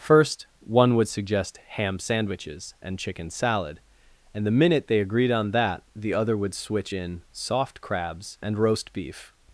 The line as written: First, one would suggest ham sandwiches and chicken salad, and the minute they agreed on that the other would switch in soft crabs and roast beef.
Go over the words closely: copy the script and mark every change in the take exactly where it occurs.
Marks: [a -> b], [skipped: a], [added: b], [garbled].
First, one would suggest ham sandwiches and chicken salad, and the minute they agreed on that the other would switch in soft crabs and roast beef.